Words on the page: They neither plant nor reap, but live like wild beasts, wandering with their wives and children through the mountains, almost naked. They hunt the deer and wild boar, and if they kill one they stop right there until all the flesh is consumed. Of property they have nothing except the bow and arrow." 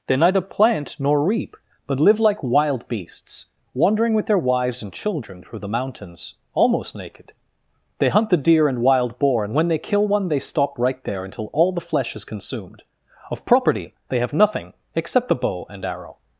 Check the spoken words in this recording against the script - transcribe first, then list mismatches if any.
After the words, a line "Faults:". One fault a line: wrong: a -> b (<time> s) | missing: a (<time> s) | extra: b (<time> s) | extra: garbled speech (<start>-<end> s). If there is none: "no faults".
They neither plant nor reap, but live like wild beasts, wandering with their wives and children through the mountains, almost naked. They hunt the deer and wild boar, and when they kill one they stop right there until all the flesh is consumed. Of property they have nothing except the bow and arrow."
Faults:
wrong: if -> when (9.5 s)